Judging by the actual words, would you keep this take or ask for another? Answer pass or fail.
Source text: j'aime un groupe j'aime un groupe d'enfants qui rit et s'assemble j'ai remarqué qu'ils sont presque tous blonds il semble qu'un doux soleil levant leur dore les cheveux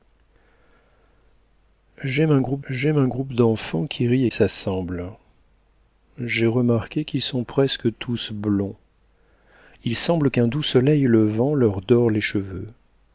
pass